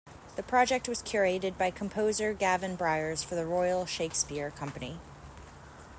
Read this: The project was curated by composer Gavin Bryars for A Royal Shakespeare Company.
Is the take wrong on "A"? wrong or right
wrong